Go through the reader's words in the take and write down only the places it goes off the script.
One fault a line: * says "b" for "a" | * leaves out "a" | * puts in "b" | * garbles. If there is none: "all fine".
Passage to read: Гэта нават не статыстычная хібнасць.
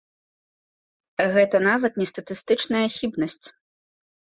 all fine